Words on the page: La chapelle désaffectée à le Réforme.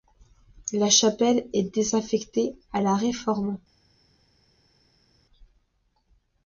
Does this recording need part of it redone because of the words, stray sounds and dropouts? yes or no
yes